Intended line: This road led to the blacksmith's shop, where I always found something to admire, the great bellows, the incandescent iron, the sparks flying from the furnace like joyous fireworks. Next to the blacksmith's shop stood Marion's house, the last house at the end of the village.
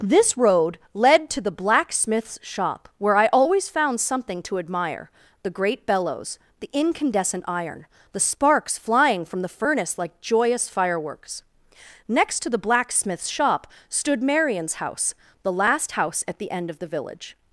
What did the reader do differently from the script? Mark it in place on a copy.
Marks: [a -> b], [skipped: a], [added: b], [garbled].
This road led to the blacksmith's shop, where I always found something to admire, the great bellows, the incandescent iron, the sparks flying from the furnace like joyous fireworks. Next to the blacksmith's shop stood Marion's house, the last house at the end of the village.